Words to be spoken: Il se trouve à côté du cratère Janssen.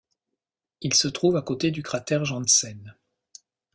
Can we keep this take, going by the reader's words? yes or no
yes